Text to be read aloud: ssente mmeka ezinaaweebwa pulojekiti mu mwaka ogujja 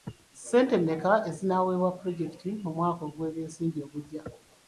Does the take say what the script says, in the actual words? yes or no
no